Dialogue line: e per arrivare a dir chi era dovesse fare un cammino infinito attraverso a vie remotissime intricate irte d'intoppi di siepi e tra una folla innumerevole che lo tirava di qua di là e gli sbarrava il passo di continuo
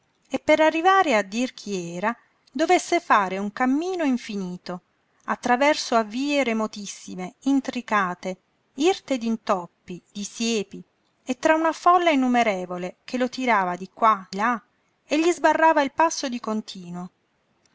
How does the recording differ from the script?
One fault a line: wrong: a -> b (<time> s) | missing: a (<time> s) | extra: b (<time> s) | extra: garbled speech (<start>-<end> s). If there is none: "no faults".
missing: di (14.3 s)